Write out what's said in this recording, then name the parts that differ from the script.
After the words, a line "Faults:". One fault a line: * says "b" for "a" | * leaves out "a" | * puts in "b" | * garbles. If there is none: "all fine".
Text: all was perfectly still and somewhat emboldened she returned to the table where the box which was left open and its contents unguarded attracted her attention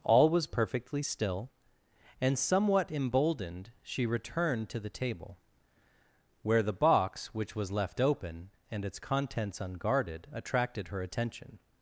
all was perfectly still and somewhat emboldened she returned to the table where the box which was left open and its contents unguarded attracted her attention
Faults:
all fine